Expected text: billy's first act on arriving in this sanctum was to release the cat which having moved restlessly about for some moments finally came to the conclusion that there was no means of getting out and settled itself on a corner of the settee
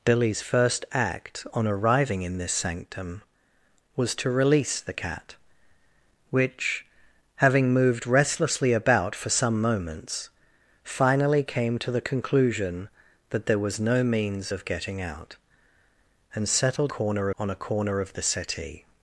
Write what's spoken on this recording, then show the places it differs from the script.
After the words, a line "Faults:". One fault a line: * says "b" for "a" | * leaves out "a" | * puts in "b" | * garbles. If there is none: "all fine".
billy's first act on arriving in this sanctum was to release the cat which having moved restlessly about for some moments finally came to the conclusion that there was no means of getting out and settled corner on a corner of the settee
Faults:
* says "corner" for "itself"